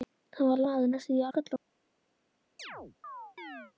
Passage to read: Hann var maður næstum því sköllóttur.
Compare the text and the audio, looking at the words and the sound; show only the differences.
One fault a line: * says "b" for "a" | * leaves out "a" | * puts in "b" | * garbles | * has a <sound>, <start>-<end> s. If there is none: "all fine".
* has a chirp, 2.6-3.7 s